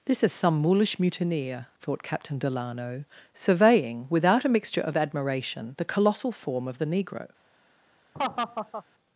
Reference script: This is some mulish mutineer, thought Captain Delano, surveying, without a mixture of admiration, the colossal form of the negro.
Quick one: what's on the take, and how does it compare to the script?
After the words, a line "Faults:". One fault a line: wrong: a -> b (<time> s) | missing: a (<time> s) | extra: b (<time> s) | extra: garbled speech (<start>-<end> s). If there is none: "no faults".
This is some mulish mutineer, thought Captain Delano, surveying, without a mixture of admiration, the colossal form of the negro.
Faults:
no faults